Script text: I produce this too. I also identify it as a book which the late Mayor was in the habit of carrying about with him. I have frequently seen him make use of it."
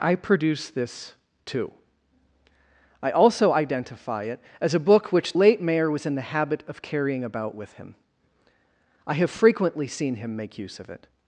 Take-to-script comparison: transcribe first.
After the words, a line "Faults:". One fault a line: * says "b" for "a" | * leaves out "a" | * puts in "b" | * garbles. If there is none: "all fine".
I produce this too. I also identify it as a book which late Mayor was in the habit of carrying about with him. I have frequently seen him make use of it."
Faults:
* leaves out "the"